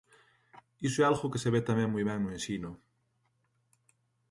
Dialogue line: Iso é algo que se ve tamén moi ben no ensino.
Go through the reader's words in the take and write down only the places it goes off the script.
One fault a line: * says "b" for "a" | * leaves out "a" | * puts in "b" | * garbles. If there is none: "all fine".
all fine